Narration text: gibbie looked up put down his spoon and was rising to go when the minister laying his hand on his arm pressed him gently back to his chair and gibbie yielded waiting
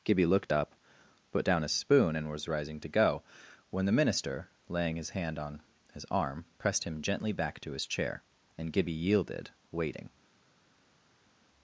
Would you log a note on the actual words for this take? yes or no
no